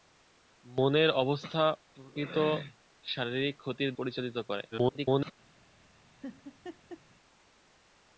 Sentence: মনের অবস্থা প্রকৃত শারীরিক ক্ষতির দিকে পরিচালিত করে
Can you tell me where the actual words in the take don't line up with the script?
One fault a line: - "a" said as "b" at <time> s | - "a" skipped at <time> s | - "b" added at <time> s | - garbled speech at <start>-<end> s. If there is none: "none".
- "দিকে" skipped at 3.9 s
- garbled speech at 4.7-5.3 s